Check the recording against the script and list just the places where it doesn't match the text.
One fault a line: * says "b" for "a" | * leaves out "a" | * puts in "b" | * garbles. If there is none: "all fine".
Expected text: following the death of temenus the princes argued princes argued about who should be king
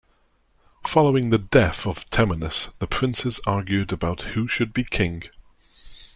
* leaves out "princes argued"